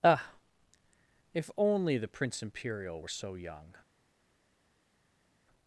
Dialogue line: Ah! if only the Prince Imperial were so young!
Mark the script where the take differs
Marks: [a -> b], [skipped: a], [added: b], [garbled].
Ah! if only the Prince Imperial were so young!